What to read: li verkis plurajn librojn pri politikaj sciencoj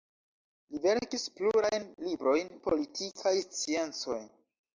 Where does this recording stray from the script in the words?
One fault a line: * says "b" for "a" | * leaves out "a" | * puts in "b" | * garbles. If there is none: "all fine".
* leaves out "pri"